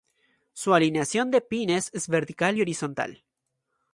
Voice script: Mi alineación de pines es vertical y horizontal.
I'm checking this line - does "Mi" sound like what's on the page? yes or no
no